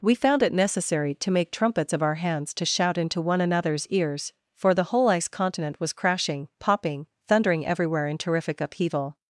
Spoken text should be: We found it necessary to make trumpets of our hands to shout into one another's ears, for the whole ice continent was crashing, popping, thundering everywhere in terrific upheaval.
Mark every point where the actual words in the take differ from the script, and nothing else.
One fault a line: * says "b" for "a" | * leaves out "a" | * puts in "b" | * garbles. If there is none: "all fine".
all fine